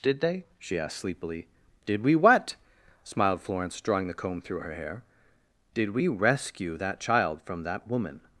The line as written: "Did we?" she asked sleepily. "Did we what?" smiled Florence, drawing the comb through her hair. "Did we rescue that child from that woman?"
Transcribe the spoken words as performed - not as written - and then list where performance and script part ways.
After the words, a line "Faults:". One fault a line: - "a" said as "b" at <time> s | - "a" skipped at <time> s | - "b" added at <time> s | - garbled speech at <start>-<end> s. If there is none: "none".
"Did they?" she asked sleepily. "Did we what?" smiled Florence, drawing the comb through her hair. "Did we rescue that child from that woman?"
Faults:
- "we" said as "they" at 0.2 s